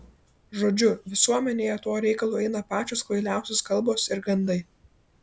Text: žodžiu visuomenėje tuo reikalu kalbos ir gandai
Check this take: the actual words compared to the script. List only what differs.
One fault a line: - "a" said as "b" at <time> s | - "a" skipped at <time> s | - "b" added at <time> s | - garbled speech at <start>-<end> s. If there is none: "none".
- "eina pačios kvailiausios" added at 2.4 s